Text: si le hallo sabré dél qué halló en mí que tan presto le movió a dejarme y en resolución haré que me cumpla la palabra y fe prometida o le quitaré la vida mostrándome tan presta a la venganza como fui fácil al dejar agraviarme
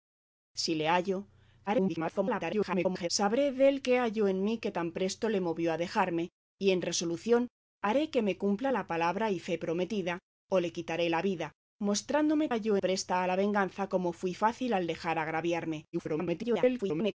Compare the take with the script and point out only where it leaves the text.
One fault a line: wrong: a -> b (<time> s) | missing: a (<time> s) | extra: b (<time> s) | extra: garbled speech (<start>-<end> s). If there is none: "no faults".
extra: garbled speech (1.7-3.1 s)
wrong: tan -> halló (12.5 s)
extra: garbled speech (15.9-17.1 s)